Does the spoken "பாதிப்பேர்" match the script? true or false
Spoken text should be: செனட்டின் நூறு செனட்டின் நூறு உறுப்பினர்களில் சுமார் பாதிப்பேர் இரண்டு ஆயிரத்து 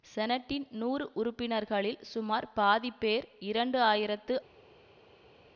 true